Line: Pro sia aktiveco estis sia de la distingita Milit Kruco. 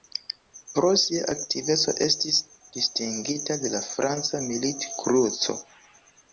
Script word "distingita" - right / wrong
wrong